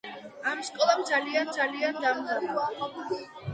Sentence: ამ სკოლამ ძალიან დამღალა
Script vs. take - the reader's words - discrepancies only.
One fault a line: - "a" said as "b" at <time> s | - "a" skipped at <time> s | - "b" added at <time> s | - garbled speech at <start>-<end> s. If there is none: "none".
- "ძალიან" added at 1.6 s